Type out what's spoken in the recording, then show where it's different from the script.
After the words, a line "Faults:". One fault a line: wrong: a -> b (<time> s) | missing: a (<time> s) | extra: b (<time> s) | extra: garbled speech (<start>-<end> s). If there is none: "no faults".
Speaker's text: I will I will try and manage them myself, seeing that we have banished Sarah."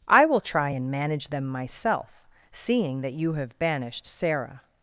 I will try and manage them myself, seeing that you have banished Sarah."
Faults:
missing: I will (0.4 s)
wrong: we -> you (3.1 s)